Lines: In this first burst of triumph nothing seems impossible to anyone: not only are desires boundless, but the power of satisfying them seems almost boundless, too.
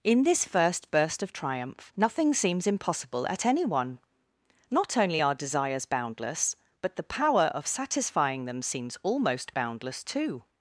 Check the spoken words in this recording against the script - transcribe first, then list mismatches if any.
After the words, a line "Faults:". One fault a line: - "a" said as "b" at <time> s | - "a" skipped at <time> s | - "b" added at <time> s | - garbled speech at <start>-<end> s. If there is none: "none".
In this first burst of triumph nothing seems impossible at anyone: not only are desires boundless, but the power of satisfying them seems almost boundless, too.
Faults:
- "to" said as "at" at 3.3 s